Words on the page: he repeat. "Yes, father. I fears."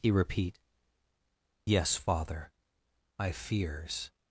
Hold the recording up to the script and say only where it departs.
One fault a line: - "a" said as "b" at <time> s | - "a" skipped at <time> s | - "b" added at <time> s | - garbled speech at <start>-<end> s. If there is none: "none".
none